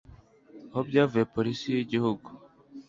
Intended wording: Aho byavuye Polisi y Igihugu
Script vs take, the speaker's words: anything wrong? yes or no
no